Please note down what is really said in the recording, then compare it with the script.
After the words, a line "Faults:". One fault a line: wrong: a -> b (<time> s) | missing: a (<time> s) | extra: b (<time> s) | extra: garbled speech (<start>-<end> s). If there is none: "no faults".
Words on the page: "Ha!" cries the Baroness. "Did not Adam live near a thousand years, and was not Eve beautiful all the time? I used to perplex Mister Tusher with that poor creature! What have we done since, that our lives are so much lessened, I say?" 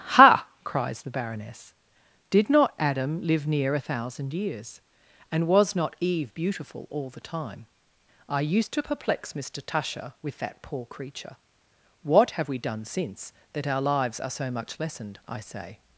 "Ha!" cries the Baroness. "Did not Adam live near a thousand years, and was not Eve beautiful all the time? I used to perplex Mister Tusher with that poor creature! What have we done since, that our lives are so much lessened, I say?"
Faults:
no faults